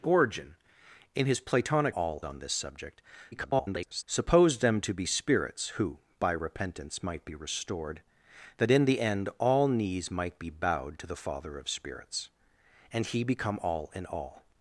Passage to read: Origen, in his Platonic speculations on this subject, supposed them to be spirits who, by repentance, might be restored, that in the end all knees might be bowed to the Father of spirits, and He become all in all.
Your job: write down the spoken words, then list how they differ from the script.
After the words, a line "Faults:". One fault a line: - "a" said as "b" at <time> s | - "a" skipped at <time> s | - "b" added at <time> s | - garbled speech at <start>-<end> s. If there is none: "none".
Origen, in his Platonic all on this subject, [garbled] supposed them to be spirits who, by repentance, might be restored, that in the end all knees might be bowed to the Father of spirits, and He become all in all.
Faults:
- "speculations" said as "all" at 1.9 s
- garbled speech at 3.3-4.0 s